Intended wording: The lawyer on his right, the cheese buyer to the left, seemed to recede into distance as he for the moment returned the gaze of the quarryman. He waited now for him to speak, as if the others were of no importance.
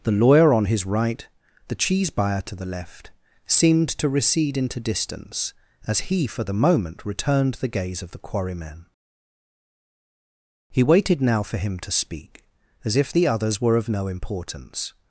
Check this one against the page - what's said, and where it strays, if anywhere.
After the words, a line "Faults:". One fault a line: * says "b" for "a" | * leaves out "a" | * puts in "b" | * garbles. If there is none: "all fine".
The lawyer on his right, the cheese buyer to the left, seemed to recede into distance as he for the moment returned the gaze of the quarryman. He waited now for him to speak, as if the others were of no importance.
Faults:
all fine